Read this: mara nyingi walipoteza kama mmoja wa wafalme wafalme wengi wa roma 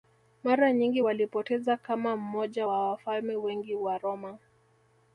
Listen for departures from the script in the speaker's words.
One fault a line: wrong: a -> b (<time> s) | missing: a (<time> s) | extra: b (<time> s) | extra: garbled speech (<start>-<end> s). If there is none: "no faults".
missing: wafalme (3.3 s)